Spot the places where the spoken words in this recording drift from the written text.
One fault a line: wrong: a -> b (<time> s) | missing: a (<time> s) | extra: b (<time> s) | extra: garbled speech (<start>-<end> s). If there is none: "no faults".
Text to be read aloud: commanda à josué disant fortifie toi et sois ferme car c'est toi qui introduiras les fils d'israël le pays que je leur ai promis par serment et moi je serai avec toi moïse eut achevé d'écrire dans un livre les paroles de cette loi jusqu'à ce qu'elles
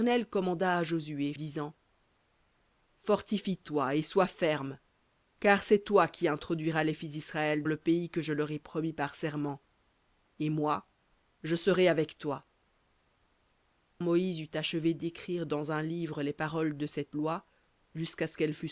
no faults